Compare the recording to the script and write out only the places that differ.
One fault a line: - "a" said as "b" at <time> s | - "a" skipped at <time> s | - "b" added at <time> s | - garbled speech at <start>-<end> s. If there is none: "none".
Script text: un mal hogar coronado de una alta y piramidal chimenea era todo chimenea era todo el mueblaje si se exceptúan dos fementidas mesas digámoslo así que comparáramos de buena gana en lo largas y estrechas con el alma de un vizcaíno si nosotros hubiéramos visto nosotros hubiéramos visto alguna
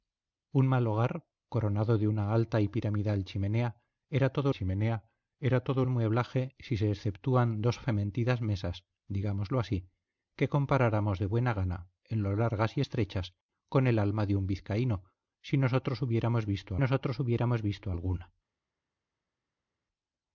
none